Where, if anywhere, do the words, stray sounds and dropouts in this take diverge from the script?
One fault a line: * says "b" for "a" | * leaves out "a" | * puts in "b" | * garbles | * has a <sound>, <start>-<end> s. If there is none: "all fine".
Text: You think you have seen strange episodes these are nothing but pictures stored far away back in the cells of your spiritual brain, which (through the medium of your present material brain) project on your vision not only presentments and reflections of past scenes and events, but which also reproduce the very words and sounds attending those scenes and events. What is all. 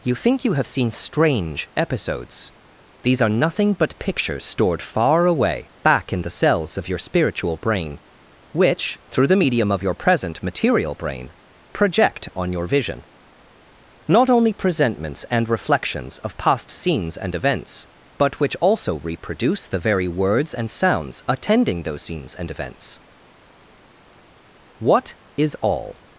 all fine